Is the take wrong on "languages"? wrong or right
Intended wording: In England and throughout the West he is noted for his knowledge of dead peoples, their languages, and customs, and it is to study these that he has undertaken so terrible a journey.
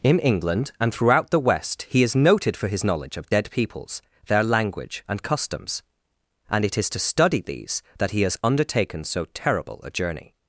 wrong